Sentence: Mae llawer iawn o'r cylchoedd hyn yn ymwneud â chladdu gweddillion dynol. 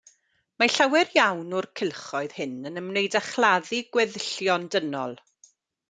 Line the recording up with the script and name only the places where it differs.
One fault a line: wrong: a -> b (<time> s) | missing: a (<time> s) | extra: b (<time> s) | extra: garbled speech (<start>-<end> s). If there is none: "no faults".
no faults